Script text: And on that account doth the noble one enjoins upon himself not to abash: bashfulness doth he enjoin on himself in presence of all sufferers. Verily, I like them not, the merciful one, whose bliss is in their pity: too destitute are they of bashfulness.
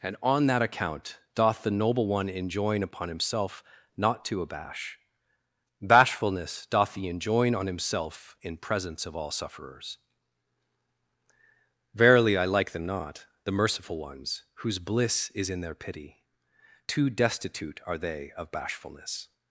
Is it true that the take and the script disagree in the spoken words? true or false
true